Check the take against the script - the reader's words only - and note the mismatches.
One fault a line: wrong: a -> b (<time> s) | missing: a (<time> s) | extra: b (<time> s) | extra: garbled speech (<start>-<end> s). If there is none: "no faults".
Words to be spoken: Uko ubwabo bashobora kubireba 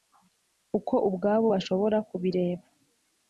no faults